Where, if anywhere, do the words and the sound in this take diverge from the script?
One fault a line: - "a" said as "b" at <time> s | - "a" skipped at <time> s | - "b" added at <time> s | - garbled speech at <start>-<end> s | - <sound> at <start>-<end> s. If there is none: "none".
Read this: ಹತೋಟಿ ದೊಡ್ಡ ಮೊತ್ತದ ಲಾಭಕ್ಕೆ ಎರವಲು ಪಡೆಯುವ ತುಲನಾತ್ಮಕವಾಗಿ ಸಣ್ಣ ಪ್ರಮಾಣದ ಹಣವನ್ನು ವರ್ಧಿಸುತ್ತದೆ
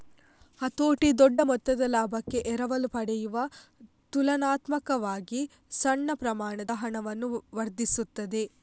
none